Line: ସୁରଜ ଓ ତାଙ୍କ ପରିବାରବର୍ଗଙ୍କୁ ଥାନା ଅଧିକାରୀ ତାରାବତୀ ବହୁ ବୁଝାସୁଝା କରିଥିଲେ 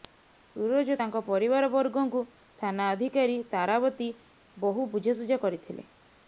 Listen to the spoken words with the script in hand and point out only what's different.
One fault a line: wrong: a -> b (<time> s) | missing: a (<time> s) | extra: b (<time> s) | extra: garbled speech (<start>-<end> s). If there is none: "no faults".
no faults